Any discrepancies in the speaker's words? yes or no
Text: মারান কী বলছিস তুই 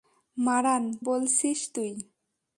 yes